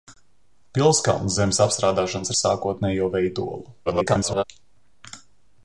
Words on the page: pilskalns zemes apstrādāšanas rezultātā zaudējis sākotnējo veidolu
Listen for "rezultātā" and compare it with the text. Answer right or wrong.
wrong